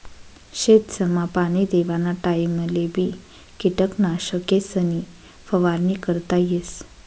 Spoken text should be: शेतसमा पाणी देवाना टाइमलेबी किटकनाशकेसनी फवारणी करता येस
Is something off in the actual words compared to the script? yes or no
no